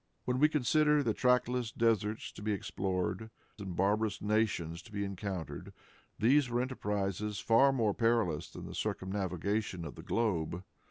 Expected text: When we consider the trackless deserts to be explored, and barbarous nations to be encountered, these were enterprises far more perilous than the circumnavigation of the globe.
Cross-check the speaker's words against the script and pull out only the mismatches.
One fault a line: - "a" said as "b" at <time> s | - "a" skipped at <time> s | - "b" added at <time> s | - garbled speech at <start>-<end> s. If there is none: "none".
none